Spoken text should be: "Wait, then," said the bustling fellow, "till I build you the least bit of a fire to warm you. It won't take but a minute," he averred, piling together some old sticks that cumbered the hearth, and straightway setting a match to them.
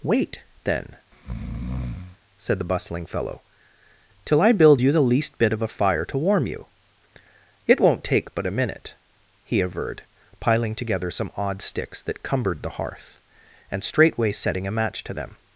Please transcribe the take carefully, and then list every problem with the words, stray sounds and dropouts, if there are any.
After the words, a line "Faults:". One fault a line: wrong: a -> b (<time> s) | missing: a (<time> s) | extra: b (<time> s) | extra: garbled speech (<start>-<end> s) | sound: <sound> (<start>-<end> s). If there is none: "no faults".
"Wait, then," said the bustling fellow, "till I build you the least bit of a fire to warm you. It won't take but a minute," he averred, piling together some odd sticks that cumbered the hearth, and straightway setting a match to them.
Faults:
sound: breath (1.1-2.2 s)
wrong: old -> odd (11.4 s)